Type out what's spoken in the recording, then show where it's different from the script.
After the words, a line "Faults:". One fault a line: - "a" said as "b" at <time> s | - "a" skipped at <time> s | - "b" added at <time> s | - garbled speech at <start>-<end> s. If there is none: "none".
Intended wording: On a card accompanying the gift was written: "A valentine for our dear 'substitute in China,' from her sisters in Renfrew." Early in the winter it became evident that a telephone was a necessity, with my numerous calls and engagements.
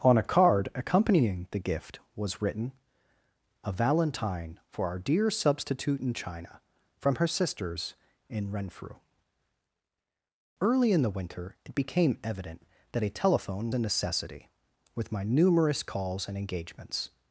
On a card accompanying the gift was written: "A valentine for our dear 'substitute in China,' from her sisters in Renfrew." Early in the winter it became evident that a telephone a necessity, with my numerous calls and engagements.
Faults:
- "was" skipped at 13.7 s